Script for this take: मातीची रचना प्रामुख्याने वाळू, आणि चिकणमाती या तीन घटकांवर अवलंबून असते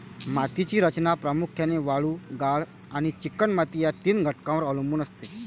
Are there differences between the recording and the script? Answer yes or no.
yes